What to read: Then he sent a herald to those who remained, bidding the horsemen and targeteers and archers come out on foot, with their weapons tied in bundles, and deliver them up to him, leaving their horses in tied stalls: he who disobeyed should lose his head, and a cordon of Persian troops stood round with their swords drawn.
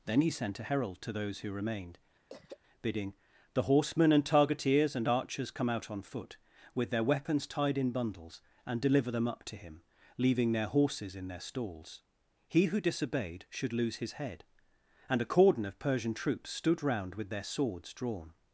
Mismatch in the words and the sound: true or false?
true